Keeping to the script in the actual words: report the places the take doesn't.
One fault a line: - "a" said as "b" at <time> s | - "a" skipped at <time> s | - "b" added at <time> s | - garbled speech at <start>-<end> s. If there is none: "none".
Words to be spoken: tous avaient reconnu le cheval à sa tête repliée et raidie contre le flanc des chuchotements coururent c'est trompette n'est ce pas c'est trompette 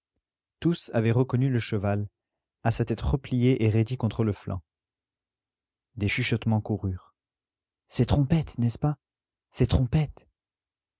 none